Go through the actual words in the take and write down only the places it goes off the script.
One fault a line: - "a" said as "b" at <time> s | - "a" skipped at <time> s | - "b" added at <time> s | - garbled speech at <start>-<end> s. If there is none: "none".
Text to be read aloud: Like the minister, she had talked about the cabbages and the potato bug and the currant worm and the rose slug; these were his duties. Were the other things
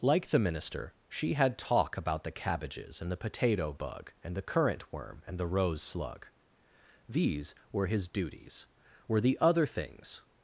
- "talked" said as "talk" at 1.6 s